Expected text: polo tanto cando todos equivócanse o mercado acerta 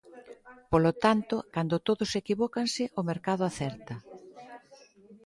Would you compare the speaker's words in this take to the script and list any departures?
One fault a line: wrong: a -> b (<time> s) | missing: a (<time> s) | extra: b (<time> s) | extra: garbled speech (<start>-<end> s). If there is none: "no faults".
no faults